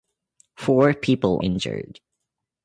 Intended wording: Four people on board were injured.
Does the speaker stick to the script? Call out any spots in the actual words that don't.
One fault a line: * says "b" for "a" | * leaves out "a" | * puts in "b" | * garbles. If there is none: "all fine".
* leaves out "on board were"